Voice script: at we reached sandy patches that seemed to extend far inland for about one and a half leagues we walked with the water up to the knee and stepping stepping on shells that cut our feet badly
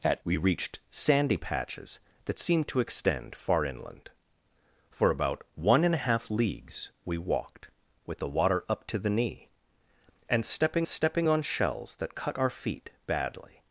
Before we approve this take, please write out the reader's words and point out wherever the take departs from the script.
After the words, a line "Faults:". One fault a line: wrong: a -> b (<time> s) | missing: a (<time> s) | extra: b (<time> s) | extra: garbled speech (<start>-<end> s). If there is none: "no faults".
at we reached sandy patches that seemed to extend far inland for about one and a half leagues we walked with the water up to the knee and stepping stepping on shells that cut our feet badly
Faults:
no faults